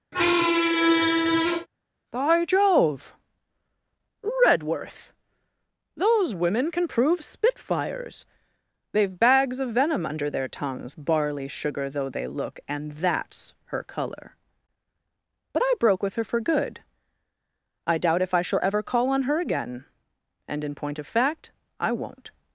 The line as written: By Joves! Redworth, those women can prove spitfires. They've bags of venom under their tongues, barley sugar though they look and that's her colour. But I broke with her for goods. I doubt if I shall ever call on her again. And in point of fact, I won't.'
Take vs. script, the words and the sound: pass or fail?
fail